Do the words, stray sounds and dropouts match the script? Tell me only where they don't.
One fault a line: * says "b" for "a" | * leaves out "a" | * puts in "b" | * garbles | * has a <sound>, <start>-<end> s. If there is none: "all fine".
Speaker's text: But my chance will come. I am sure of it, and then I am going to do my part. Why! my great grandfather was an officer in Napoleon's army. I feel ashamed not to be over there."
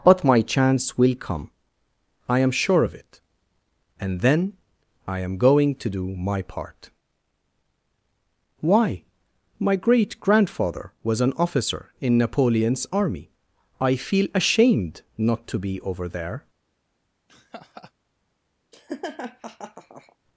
* has a laugh, 17.3-17.9 s
* has a laugh, 18.7-20.2 s